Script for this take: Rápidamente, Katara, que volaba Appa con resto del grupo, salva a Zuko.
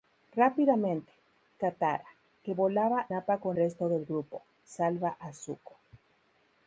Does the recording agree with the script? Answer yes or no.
yes